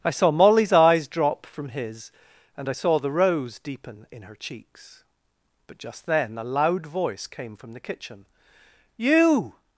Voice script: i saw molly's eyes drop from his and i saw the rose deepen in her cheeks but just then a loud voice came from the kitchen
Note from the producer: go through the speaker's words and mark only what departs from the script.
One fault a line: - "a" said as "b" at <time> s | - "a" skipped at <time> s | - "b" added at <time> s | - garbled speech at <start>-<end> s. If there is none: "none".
- "you" added at 9.0 s